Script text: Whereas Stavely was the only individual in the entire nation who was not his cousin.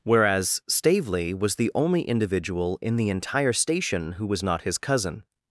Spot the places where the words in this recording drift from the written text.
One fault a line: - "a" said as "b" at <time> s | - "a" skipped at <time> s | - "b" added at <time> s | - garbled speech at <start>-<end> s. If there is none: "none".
- "nation" said as "station" at 3.5 s